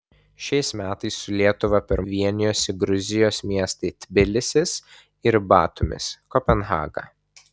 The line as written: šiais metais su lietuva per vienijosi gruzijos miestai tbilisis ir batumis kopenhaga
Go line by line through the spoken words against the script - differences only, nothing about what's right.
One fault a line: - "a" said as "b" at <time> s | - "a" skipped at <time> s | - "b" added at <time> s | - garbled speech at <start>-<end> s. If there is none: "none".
none